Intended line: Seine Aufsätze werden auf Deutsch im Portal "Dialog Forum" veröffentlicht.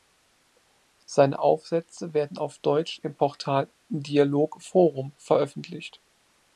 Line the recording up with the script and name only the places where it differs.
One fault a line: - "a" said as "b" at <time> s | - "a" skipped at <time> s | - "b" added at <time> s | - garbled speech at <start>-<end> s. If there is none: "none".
none